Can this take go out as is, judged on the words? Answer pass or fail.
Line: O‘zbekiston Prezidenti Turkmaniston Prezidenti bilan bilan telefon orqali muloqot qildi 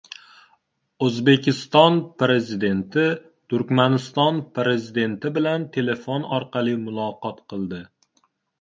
fail